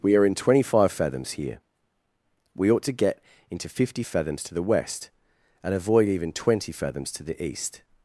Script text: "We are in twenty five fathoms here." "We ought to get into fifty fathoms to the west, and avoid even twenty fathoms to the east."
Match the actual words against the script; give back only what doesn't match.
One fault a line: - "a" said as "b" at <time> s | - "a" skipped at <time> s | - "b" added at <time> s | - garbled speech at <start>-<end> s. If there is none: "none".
none